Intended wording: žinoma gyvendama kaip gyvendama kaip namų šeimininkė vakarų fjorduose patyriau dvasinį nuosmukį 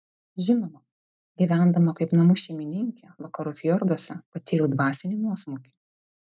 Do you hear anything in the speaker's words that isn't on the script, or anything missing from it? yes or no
yes